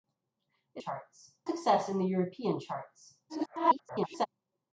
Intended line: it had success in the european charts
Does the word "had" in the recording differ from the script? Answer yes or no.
yes